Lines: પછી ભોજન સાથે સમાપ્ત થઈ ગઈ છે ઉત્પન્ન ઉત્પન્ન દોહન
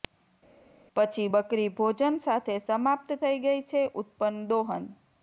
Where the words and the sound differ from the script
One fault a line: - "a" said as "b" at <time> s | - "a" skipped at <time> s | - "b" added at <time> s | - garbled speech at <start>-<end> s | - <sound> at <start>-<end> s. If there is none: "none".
- "બકરી" added at 1.3 s
- "ઉત્પન્ન" skipped at 4.4 s